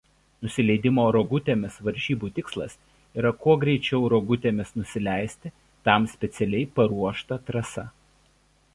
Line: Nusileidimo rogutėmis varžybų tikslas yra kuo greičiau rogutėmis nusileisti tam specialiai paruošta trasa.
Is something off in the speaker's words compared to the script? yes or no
no